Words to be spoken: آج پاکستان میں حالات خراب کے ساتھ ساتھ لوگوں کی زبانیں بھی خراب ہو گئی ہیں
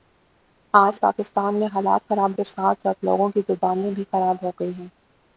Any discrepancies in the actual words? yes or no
no